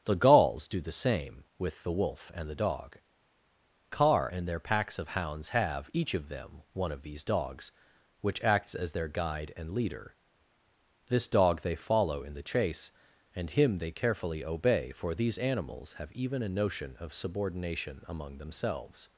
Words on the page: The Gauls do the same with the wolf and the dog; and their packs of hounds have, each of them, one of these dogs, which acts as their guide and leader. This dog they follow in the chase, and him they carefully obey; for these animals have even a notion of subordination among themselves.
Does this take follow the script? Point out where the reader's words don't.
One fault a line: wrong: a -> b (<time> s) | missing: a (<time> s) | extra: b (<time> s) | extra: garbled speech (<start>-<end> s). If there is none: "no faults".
extra: car (3.9 s)